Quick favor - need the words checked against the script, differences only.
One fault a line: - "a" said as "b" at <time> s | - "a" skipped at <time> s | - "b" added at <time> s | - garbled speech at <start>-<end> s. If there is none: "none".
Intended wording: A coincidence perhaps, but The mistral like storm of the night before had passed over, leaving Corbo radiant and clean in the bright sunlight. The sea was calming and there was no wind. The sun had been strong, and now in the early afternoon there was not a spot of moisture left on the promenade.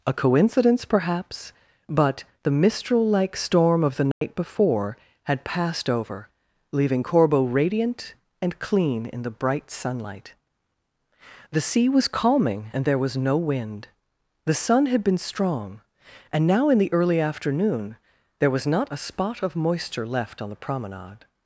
none